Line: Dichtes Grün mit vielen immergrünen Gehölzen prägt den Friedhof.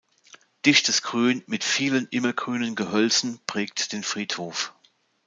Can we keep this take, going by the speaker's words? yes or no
yes